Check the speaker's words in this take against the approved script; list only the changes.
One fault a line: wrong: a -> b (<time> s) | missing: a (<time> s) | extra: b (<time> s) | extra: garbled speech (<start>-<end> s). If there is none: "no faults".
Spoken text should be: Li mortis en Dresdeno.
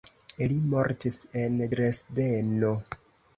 no faults